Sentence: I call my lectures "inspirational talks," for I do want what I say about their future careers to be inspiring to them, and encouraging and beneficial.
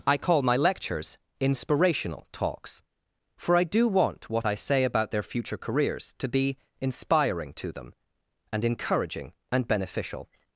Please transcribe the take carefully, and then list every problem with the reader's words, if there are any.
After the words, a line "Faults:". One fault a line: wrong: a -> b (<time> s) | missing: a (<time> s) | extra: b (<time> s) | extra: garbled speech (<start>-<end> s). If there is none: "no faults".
I call my lectures "inspirational talks," for I do want what I say about their future careers to be inspiring to them, and encouraging and beneficial.
Faults:
no faults